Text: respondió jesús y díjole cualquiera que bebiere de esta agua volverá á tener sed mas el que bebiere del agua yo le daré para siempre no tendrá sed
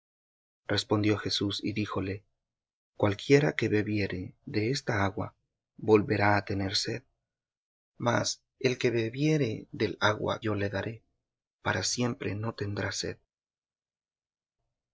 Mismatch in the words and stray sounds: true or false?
false